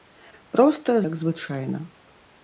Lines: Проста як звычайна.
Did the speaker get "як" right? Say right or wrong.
right